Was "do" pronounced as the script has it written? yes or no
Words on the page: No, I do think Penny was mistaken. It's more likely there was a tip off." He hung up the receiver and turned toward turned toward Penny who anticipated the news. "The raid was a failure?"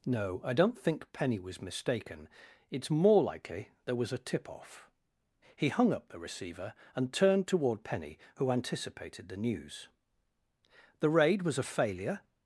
no